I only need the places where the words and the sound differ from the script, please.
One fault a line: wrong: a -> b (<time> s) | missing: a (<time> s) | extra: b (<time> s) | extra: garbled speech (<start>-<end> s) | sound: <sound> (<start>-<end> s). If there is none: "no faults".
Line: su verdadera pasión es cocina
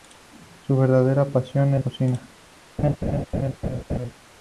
sound: laugh (2.8-4.1 s)